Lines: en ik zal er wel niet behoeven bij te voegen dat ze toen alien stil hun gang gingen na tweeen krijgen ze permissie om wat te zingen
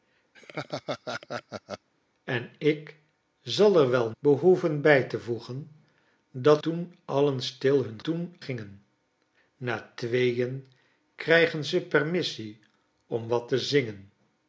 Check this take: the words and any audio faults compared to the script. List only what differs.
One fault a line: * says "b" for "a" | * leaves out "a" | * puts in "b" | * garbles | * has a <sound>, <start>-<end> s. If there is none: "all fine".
* has a laugh, 0.3-1.9 s
* leaves out "niet"
* leaves out "ze"
* says "toen" for "gang"